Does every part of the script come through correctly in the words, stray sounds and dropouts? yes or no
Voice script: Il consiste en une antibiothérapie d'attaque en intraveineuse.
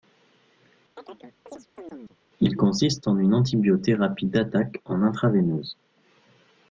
no